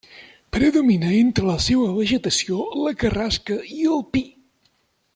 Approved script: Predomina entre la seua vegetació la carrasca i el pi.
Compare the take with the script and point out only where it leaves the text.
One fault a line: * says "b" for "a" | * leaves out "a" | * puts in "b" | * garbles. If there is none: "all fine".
all fine